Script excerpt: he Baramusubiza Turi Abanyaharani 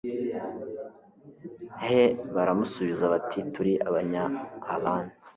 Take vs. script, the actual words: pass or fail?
fail